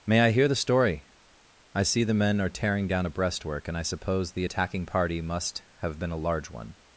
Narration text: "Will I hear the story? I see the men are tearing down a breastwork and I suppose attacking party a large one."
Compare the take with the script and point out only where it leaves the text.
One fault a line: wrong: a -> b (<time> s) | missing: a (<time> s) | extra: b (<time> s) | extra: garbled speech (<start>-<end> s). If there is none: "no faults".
wrong: Will -> May (0.1 s)
extra: the (4.3 s)
extra: must have been (5.2 s)